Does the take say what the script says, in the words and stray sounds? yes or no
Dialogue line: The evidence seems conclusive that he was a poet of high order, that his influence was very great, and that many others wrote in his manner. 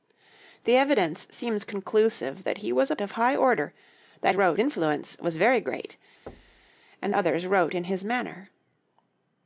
no